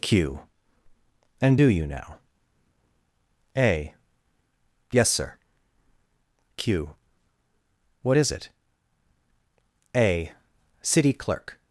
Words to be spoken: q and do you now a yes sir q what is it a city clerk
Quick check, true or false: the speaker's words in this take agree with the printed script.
true